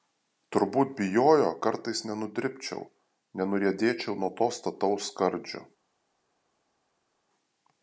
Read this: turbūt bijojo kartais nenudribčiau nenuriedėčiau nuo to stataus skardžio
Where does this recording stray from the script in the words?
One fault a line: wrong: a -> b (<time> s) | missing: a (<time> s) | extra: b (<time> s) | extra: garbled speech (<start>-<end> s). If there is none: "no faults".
no faults